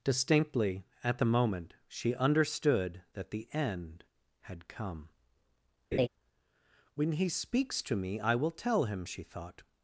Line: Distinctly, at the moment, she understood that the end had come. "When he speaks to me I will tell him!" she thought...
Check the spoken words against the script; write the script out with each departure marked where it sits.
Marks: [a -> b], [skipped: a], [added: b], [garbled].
Distinctly, at the moment, she understood that the end had come. "When he speaks to me I will tell him!" she thought...